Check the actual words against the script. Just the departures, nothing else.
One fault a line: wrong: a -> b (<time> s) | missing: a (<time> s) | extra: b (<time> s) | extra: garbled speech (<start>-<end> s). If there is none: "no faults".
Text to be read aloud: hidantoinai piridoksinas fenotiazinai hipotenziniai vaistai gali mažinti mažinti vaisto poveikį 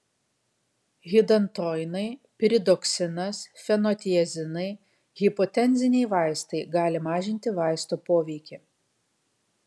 missing: mažinti (7.6 s)